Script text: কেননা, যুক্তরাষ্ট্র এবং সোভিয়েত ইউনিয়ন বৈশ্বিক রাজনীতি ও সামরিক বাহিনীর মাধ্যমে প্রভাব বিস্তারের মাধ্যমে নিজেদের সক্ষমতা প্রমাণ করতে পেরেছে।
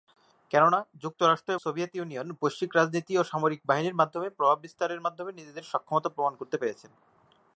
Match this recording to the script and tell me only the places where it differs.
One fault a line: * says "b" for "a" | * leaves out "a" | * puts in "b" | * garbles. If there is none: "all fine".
* leaves out "এবং"